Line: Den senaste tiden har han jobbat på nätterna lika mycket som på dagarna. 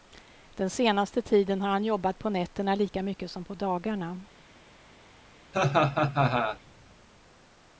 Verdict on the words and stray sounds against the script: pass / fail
fail